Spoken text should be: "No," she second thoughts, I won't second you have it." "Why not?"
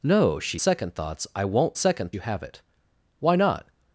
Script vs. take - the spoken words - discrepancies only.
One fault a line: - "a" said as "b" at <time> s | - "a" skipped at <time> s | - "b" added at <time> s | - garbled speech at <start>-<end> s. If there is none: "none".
none